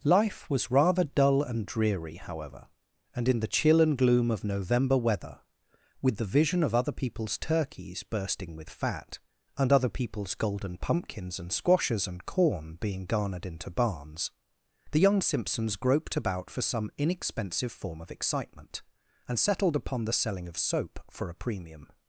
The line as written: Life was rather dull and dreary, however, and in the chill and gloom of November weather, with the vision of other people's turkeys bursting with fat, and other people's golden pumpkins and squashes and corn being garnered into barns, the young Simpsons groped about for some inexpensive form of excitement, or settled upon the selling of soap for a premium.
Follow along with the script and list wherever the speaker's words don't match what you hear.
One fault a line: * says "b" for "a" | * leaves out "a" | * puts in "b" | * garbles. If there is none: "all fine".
* says "and" for "or"